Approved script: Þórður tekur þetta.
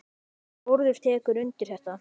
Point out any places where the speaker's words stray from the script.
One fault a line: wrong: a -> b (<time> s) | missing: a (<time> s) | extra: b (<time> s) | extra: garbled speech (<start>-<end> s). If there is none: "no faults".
extra: undir (1.4 s)